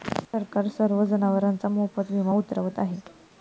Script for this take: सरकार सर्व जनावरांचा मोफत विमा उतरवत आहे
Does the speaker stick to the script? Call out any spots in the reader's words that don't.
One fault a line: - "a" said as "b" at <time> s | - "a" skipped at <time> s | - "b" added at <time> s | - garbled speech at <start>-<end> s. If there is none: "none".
none